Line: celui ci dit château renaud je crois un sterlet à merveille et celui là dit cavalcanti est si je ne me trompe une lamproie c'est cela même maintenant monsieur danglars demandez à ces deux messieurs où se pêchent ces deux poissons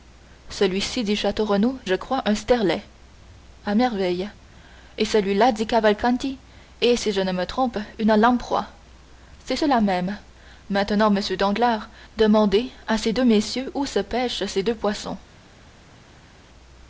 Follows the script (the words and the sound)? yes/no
yes